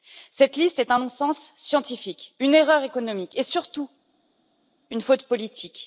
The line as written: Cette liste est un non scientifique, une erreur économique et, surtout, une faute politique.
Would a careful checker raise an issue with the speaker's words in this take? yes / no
yes